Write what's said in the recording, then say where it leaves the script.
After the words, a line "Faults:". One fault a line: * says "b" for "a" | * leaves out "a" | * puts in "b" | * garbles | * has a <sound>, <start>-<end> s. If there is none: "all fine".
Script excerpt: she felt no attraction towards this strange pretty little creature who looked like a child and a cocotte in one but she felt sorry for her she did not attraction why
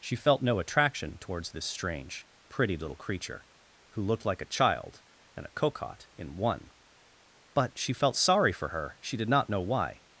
she felt no attraction towards this strange pretty little creature who looked like a child and a cocotte in one but she felt sorry for her she did not know why
Faults:
* says "know" for "attraction"